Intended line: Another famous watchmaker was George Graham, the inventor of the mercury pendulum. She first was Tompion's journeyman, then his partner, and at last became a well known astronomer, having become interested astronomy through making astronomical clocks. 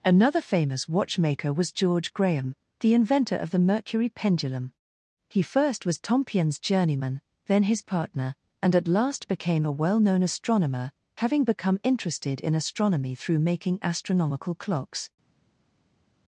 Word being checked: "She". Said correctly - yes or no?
no